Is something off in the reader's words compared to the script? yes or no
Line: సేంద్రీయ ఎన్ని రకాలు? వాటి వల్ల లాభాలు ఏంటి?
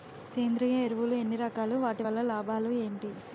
yes